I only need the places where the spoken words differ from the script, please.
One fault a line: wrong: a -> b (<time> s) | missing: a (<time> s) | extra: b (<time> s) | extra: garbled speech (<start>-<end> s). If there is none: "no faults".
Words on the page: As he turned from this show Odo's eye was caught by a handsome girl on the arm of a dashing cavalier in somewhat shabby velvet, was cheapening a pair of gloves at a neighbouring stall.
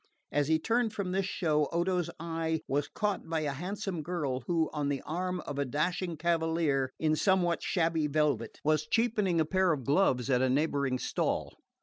extra: who (4.5 s)